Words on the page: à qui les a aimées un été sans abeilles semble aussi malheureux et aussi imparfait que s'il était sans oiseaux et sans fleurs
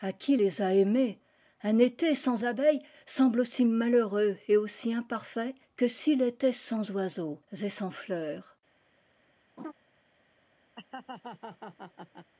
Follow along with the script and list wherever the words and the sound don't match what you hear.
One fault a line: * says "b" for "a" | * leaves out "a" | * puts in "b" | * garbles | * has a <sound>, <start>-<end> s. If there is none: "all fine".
* has a laugh, 9.6-9.7 s
* has a laugh, 10.8-12.3 s